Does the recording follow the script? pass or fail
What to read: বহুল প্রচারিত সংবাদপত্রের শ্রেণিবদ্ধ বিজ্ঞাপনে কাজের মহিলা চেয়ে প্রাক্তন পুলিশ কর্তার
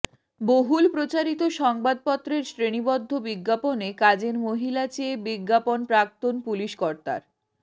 fail